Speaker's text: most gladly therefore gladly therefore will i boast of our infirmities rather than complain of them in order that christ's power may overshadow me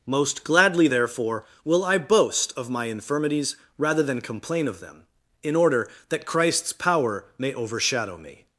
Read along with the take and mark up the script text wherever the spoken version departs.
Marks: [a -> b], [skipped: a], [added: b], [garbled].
most gladly therefore [skipped: gladly therefore] will i boast of [our -> my] infirmities rather than complain of them in order that christ's power may overshadow me